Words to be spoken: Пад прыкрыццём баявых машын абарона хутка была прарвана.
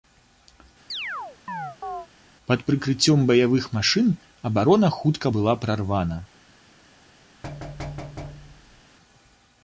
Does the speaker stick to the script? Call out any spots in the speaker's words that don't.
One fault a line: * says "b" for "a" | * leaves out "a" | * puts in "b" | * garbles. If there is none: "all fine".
all fine